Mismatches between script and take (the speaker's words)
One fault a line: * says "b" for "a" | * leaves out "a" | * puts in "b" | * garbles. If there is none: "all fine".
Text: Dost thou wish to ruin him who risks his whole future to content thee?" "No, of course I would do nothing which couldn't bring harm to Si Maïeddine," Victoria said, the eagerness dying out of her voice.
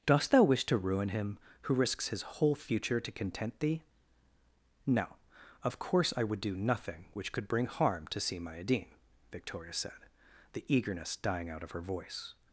* says "could" for "couldn't"